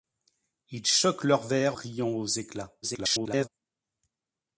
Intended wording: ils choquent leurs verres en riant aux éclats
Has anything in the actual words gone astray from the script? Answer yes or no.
yes